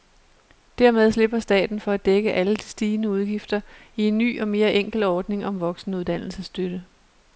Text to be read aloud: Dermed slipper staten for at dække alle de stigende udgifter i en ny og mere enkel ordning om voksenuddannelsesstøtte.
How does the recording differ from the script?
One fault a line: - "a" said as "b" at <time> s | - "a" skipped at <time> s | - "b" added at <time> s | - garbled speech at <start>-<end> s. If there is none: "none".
none